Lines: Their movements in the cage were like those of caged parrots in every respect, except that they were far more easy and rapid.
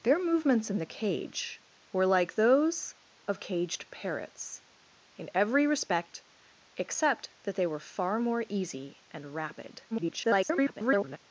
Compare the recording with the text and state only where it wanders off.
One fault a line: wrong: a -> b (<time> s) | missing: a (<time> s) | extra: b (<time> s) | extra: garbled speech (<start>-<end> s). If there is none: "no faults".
extra: garbled speech (9.9-11.2 s)